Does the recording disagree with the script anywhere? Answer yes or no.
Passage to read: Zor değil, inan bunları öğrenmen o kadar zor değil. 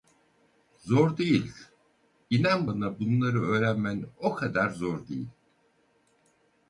yes